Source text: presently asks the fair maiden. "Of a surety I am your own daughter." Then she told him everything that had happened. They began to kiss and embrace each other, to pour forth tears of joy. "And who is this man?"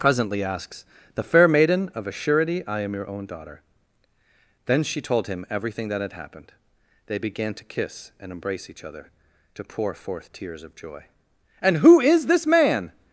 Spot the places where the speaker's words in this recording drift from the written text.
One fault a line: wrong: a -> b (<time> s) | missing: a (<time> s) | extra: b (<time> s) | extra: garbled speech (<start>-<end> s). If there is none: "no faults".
no faults